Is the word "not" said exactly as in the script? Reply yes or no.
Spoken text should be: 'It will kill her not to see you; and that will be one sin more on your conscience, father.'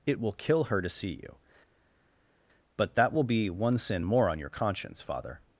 no